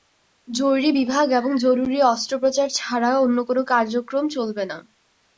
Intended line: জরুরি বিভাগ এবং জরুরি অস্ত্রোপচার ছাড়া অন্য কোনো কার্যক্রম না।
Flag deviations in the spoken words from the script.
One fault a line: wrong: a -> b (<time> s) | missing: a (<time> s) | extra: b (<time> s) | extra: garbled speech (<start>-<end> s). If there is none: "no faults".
extra: চলবে (4.4 s)